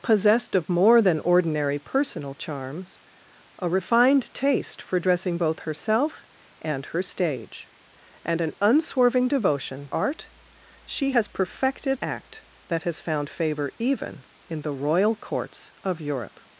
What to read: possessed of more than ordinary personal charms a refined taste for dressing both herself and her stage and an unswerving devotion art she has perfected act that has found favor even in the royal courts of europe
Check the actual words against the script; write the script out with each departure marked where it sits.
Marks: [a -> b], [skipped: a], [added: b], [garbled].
possessed of more than ordinary personal charms a refined taste for dressing both herself and her stage and an unswerving devotion art she has perfected act that has found favor even in the royal courts of europe